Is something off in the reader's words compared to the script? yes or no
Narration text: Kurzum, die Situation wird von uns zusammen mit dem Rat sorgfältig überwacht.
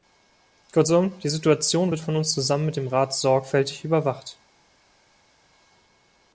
no